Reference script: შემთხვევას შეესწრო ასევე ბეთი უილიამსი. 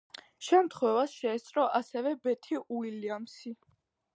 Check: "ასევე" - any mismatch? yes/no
no